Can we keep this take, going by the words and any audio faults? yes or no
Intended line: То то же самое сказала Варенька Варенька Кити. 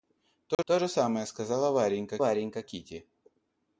no